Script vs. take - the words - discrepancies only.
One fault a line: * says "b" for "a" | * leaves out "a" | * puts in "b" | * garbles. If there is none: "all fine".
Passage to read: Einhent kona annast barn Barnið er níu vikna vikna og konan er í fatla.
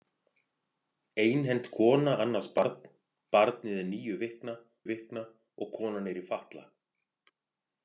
all fine